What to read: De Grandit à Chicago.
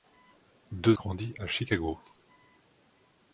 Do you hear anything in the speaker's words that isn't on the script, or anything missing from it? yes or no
no